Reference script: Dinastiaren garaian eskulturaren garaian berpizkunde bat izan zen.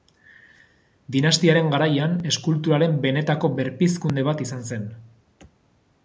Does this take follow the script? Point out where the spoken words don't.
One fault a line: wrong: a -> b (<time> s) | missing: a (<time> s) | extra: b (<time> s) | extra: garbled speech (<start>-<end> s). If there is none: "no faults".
wrong: garaian -> benetako (3.0 s)